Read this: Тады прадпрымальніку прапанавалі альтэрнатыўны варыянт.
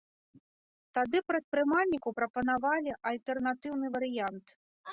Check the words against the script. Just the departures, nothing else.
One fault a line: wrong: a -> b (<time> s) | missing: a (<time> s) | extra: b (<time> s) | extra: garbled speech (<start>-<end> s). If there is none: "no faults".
no faults